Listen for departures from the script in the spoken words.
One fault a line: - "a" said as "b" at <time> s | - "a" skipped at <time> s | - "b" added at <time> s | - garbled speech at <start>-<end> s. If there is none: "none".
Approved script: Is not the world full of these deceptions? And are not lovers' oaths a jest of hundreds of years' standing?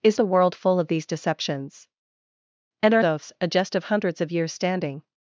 - "not" skipped at 0.2 s
- "not lovers" skipped at 3.0 s